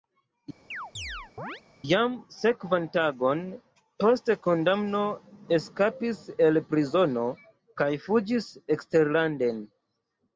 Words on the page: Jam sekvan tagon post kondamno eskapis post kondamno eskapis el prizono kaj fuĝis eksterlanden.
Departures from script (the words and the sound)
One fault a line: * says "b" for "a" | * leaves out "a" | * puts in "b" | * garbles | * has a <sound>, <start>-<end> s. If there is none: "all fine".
* has a chirp, 0.7-1.6 s
* leaves out "post kondamno eskapis"